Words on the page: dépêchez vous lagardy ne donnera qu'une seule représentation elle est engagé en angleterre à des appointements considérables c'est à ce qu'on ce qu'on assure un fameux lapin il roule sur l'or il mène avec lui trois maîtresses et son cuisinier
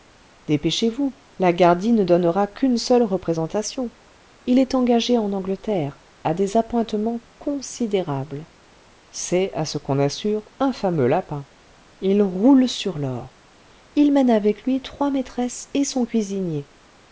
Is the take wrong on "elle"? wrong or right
wrong